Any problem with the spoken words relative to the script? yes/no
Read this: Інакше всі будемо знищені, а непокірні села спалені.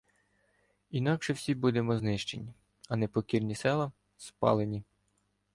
no